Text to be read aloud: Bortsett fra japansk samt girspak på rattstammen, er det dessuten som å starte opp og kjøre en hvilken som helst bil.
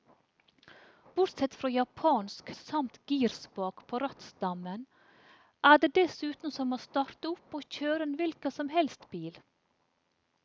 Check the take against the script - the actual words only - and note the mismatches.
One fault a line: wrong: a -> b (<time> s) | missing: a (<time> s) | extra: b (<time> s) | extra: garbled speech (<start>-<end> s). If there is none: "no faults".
no faults